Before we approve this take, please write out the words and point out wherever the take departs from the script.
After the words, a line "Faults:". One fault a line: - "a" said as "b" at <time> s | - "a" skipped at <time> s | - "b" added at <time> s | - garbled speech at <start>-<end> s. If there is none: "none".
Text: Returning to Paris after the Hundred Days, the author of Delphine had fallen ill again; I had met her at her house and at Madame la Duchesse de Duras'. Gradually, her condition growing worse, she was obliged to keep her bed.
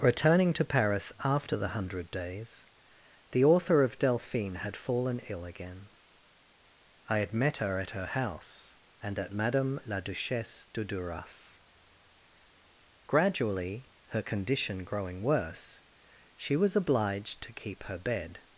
Returning to Paris after the Hundred Days, the author of Delphine had fallen ill again; I had met her at her house and at Madame la Duchesse de Duras'. Gradually, her condition growing worse, she was obliged to keep her bed.
Faults:
none